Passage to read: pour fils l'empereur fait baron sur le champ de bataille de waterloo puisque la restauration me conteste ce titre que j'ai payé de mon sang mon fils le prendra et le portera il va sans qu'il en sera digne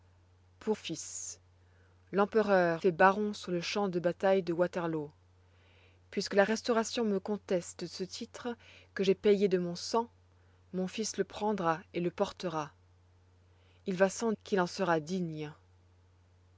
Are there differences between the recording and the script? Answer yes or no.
no